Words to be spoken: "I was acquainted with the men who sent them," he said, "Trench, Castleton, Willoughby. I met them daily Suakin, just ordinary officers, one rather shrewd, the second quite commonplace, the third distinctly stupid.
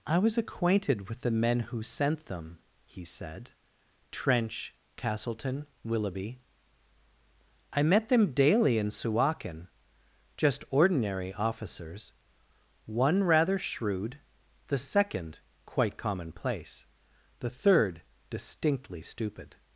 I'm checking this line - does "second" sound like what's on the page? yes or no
yes